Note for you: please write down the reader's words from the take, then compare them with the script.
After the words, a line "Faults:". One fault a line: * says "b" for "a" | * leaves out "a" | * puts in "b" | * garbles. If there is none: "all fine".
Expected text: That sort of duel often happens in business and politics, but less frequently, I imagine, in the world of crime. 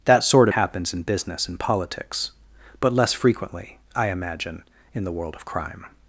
That sort happens in business and politics, but less frequently, I imagine, in the world of crime.
Faults:
* leaves out "of duel often"